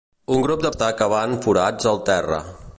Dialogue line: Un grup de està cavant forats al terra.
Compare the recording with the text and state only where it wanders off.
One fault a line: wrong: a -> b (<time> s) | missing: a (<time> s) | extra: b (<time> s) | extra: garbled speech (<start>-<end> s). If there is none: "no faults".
no faults